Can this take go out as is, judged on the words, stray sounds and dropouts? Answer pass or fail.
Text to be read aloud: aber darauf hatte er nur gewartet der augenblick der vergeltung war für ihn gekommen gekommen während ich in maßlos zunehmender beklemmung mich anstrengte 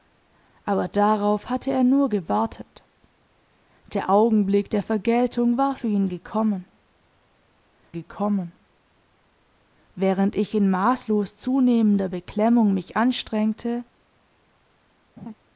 fail